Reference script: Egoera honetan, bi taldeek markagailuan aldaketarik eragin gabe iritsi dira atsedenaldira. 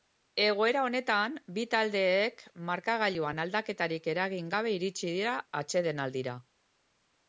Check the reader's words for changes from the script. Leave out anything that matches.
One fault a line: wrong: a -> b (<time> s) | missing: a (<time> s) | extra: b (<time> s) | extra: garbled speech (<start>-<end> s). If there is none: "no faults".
no faults